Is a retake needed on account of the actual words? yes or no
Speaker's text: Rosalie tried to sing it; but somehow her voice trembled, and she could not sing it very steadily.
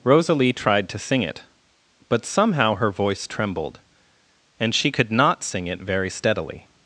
no